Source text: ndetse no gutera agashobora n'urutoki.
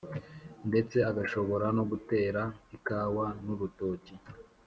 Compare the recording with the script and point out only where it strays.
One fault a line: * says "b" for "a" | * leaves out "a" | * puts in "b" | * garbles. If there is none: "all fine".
* puts in "agashobora"
* says "ikawa" for "agashobora"